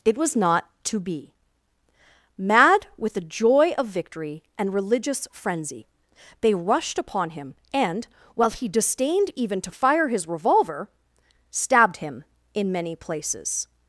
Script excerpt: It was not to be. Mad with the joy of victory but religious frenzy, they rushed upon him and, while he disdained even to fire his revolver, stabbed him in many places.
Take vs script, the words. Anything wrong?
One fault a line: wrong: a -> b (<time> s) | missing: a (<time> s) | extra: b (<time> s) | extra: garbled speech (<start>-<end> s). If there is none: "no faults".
wrong: but -> and (4.6 s)